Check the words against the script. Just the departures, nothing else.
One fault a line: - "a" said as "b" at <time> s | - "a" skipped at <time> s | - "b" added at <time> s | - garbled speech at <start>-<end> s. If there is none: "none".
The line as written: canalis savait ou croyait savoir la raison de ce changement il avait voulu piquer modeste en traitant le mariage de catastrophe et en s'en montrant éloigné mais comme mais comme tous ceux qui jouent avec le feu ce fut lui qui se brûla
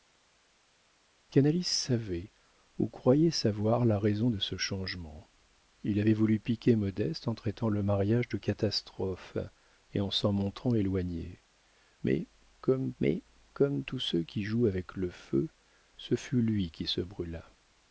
none